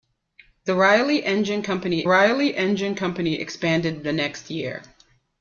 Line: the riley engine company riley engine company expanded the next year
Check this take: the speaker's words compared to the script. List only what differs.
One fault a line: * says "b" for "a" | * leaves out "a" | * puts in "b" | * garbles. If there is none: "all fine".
all fine